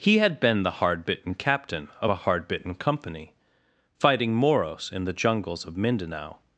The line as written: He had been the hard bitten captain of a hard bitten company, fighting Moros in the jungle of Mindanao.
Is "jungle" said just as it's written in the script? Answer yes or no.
no